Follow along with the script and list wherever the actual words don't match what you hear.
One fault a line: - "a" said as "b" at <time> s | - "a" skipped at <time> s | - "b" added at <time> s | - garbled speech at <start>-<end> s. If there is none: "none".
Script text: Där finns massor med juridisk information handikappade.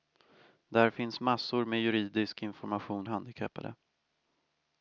none